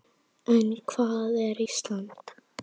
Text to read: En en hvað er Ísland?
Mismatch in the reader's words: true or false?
true